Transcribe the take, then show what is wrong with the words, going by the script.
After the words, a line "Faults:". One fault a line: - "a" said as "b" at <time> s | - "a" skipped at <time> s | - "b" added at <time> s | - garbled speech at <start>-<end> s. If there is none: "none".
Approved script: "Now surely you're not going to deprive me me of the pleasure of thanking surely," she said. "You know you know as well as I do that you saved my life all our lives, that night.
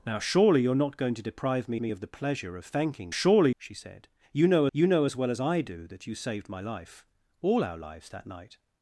"Now surely you're not going to deprive me me of the pleasure of thanking surely," she said. "You know you know as well as I do that you saved my life all our lives, that night.
Faults:
none